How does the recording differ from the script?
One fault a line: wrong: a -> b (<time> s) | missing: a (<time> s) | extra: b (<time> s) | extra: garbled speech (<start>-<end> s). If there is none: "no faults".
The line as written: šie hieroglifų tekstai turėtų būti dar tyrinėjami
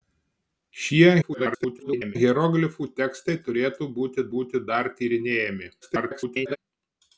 extra: garbled speech (1.2-2.2 s)
extra: būti (4.4 s)
extra: garbled speech (5.8-6.6 s)